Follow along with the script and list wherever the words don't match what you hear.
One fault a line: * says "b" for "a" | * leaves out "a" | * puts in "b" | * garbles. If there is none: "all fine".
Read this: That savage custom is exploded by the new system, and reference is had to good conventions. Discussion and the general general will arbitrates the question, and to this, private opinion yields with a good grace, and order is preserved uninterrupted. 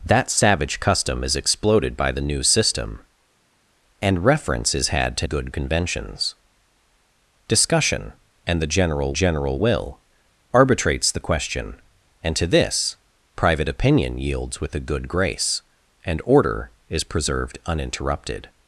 all fine